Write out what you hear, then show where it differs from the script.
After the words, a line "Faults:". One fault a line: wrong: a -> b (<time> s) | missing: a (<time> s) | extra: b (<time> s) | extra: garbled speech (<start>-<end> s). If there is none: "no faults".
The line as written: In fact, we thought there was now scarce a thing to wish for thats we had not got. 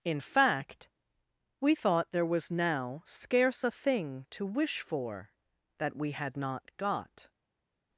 In fact, we thought there was now scarce a thing to wish for that we had not got.
Faults:
wrong: thats -> that (5.8 s)